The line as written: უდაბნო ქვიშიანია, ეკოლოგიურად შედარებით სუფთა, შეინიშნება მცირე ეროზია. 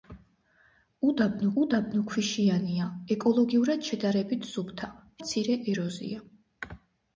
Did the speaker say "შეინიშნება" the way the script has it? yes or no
no